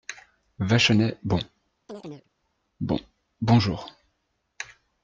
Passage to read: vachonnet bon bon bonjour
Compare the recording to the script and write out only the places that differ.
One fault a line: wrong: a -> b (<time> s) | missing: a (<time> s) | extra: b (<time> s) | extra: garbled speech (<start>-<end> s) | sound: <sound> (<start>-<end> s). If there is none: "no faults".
sound: chirp (1.9-2.3 s)